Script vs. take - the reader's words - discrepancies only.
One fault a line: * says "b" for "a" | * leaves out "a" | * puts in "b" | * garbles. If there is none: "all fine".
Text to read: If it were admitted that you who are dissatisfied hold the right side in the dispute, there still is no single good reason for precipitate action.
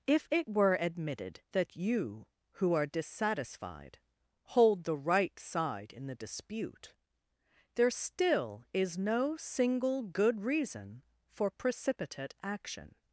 all fine